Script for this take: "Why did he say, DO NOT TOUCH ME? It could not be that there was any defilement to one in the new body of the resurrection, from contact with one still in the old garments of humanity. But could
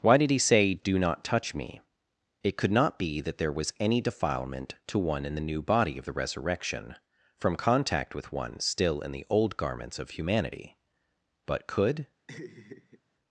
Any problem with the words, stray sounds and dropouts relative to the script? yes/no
yes